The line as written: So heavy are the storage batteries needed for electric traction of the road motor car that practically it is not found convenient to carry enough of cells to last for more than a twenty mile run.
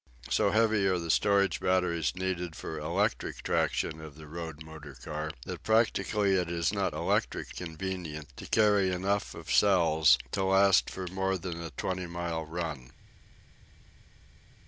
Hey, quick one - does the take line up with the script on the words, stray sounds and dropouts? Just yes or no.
no